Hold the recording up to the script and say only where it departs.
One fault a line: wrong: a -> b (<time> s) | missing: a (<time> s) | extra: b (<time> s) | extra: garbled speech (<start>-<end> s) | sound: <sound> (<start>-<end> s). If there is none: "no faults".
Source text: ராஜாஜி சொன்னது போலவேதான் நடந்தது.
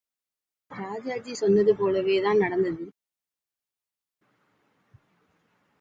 no faults